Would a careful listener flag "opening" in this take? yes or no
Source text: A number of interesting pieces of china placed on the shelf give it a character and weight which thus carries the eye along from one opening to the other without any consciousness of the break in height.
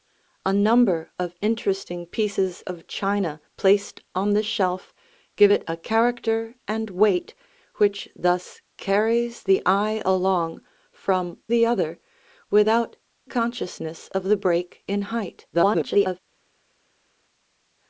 yes